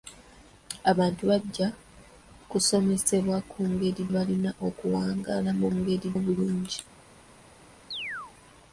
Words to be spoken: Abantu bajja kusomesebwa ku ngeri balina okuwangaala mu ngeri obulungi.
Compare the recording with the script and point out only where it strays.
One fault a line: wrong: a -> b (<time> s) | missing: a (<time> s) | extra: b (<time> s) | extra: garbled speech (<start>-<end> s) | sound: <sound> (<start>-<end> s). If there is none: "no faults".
sound: chirp (7.9-8.3 s)